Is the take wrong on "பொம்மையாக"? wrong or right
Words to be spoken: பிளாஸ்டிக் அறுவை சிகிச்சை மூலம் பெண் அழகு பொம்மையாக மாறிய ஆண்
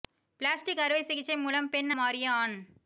wrong